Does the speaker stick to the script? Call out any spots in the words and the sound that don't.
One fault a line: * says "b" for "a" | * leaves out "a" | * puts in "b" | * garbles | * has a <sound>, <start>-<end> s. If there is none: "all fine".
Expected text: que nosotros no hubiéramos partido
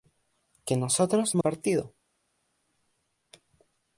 * leaves out "hubiéramos"